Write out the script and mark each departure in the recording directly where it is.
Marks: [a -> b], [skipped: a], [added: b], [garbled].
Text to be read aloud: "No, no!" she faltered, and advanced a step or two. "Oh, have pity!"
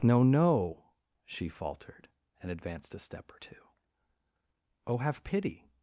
"No, no!" she faltered, and advanced a step or two. "Oh, have pity!"